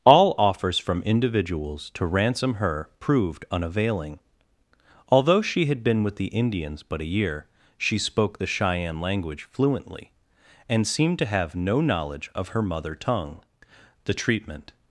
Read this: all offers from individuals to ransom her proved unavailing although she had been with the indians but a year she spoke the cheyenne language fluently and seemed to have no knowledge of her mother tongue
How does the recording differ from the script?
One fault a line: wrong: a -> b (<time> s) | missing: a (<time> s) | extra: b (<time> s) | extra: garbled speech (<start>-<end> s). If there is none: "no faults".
extra: the treatment (14.1 s)